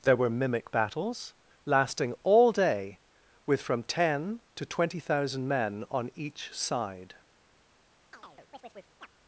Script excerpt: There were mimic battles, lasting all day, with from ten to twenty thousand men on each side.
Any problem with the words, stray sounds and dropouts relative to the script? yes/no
yes